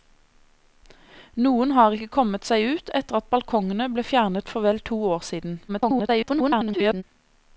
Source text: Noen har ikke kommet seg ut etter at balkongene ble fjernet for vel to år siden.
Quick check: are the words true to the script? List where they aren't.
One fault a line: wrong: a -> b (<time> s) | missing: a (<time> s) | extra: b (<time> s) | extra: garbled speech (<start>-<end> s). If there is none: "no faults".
extra: garbled speech (5.7-7.0 s)